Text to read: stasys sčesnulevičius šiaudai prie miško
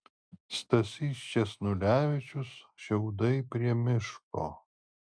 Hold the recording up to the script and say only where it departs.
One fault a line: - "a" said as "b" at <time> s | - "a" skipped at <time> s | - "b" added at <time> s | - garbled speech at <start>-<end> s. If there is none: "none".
none